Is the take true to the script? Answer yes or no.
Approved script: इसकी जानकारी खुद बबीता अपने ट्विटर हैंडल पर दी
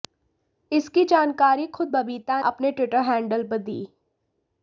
yes